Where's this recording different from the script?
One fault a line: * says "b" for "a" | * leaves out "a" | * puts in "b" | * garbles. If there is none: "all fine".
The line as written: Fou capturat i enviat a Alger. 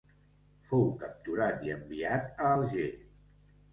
all fine